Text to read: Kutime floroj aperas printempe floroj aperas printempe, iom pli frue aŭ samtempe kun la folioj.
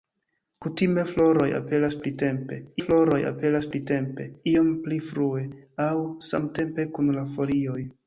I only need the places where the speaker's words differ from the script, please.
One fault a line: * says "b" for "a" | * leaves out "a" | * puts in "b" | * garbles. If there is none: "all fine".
all fine